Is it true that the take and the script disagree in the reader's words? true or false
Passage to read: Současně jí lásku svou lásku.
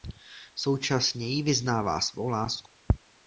true